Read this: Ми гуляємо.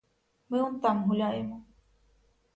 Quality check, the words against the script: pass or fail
fail